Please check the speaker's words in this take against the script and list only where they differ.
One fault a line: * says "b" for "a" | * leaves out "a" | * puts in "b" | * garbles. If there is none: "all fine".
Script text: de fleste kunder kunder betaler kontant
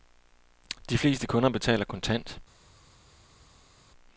* leaves out "kunder"